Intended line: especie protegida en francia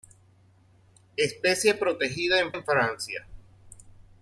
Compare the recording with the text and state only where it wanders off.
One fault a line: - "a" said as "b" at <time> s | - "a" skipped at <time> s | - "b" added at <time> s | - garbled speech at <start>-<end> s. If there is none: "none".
- "en" added at 2.5 s